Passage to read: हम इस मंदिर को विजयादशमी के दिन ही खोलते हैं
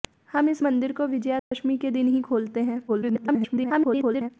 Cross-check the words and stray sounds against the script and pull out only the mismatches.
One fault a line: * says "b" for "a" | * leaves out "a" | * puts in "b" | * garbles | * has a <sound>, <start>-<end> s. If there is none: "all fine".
* has a dropout, 1.4-1.5 s
* garbles